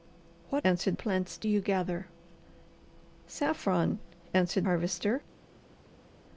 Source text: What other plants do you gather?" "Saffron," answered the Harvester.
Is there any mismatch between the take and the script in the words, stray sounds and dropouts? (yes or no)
yes